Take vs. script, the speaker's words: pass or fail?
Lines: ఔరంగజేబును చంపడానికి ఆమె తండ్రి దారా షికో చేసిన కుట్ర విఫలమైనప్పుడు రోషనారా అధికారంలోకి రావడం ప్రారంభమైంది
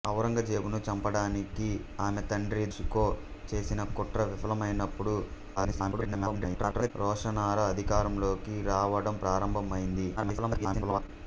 fail